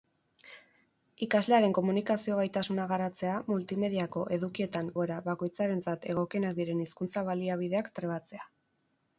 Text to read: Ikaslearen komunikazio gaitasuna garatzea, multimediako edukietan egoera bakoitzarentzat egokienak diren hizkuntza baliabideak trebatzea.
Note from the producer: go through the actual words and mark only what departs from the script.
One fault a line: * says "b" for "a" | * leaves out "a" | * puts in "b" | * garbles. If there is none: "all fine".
all fine